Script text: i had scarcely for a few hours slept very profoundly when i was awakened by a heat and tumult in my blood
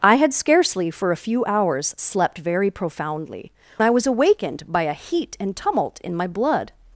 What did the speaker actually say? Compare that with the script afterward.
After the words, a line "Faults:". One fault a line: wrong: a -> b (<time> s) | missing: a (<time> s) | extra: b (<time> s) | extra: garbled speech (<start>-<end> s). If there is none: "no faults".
i had scarcely for a few hours slept very profoundly i was awakened by a heat and tumult in my blood
Faults:
missing: when (3.5 s)